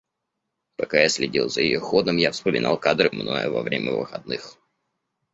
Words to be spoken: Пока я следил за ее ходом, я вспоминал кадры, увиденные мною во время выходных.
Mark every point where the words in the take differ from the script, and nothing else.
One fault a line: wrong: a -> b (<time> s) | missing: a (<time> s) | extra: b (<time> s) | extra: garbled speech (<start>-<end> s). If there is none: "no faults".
missing: увиденные (3.1 s)